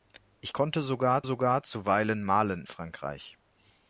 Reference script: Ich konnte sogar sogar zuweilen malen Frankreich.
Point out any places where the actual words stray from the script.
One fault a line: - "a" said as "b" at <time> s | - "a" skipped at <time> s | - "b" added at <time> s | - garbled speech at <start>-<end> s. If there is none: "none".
none